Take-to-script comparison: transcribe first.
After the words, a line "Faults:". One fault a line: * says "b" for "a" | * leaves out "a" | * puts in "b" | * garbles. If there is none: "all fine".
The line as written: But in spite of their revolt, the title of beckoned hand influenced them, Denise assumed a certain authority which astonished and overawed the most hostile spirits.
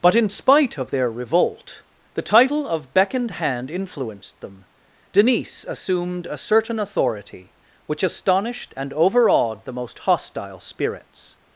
But in spite of their revolt, the title of beckoned hand influenced them, Denise assumed a certain authority which astonished and overawed the most hostile spirits.
Faults:
all fine